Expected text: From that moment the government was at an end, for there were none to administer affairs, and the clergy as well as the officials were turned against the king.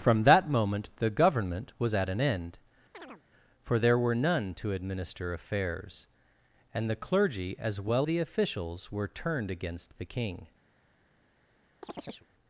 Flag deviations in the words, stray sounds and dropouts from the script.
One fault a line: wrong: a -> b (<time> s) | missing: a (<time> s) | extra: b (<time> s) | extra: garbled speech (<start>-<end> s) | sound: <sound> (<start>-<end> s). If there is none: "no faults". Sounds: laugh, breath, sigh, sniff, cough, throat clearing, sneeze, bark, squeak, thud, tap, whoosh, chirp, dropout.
sound: chirp (2.9-3.2 s)
missing: as (8.1 s)
sound: chirp (11.8-12.3 s)